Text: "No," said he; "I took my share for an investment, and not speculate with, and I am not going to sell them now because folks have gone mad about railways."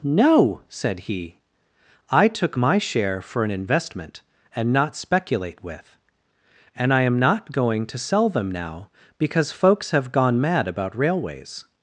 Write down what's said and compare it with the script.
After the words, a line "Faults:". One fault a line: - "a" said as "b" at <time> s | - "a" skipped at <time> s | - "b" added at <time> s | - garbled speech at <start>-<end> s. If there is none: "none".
"No," said he; "I took my share for an investment, and not speculate with, and I am not going to sell them now because folks have gone mad about railways."
Faults:
none